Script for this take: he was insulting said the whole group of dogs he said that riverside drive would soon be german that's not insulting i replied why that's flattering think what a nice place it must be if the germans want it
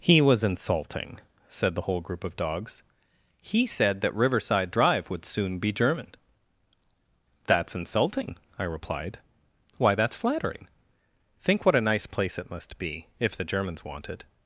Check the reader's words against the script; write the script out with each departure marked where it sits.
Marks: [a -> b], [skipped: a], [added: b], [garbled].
he was insulting said the whole group of dogs he said that riverside drive would soon be german that's [skipped: not] insulting i replied why that's flattering think what a nice place it must be if the germans want it